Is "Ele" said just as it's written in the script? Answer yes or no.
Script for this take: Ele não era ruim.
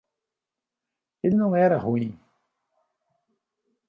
yes